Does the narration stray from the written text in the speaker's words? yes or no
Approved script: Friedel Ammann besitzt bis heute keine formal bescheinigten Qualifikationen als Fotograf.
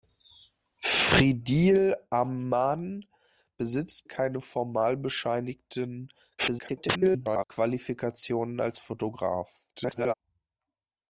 yes